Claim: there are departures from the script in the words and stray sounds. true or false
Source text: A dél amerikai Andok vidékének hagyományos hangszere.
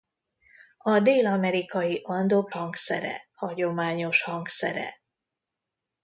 true